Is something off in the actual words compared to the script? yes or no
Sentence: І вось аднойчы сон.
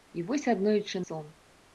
no